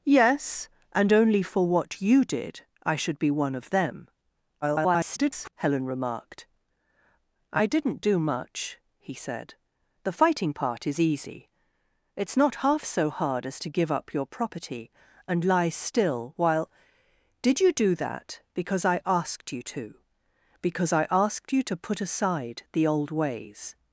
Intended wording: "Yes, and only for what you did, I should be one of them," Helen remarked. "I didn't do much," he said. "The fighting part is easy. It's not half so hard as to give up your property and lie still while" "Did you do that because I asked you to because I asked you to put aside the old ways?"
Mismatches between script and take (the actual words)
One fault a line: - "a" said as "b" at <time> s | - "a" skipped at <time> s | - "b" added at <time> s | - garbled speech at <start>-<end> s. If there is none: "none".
- garbled speech at 4.6-5.5 s